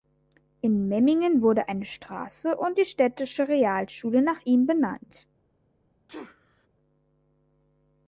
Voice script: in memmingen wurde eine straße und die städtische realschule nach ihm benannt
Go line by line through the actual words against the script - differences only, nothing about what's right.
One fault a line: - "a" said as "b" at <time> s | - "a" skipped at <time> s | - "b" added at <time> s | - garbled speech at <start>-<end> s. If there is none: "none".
none